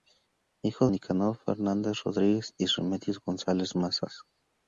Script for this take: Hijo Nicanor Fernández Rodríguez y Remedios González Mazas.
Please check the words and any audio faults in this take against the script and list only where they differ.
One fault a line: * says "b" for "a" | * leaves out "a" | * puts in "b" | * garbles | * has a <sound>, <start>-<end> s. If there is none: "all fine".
all fine